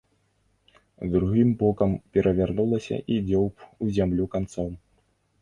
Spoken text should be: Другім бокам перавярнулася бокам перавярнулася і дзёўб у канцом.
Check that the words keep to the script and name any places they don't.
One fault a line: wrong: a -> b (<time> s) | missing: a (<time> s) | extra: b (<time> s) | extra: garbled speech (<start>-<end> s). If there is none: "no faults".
missing: бокам перавярнулася (3.0 s)
extra: зямлю (4.0 s)